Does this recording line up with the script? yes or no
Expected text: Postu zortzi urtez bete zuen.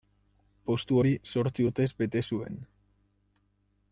no